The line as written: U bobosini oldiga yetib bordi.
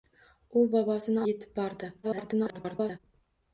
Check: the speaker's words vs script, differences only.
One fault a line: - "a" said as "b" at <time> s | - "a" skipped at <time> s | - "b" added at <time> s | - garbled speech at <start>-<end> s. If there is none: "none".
- "oldiga" skipped at 1.2 s
- garbled speech at 2.0-3.0 s